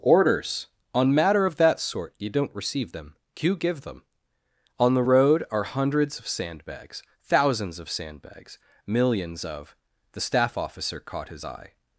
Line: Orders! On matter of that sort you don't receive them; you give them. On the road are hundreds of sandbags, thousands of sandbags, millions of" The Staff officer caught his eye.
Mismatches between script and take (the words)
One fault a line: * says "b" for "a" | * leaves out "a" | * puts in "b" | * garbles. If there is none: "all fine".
all fine